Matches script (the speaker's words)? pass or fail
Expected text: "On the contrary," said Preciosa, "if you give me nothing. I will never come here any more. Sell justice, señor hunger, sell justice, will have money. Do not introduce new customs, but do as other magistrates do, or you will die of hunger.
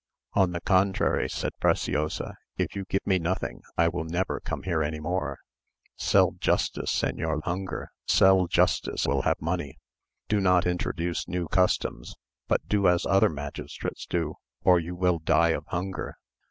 pass